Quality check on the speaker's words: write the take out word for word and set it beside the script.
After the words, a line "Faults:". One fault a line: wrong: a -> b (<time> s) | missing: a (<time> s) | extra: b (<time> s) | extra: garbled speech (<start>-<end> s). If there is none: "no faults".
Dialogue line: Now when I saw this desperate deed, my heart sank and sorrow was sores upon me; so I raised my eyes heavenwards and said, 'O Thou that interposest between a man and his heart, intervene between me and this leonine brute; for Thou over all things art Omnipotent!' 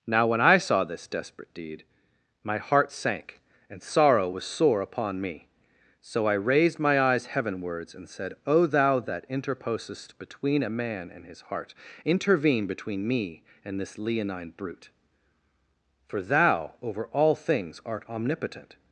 Now when I saw this desperate deed, my heart sank and sorrow was sore upon me; so I raised my eyes heavenwards and said, 'O Thou that interposest between a man and his heart, intervene between me and this leonine brute; for Thou over all things art Omnipotent!'
Faults:
wrong: sores -> sore (4.4 s)